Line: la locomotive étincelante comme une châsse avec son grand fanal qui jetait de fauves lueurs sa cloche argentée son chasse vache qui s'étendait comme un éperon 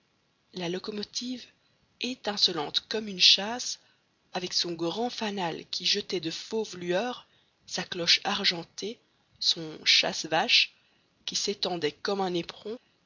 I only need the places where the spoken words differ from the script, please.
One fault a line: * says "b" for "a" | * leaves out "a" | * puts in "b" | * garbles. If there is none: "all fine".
all fine